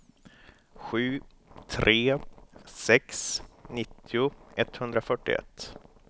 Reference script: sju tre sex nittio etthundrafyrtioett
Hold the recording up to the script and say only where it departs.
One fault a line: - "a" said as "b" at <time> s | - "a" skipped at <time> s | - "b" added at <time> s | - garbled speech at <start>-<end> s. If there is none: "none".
none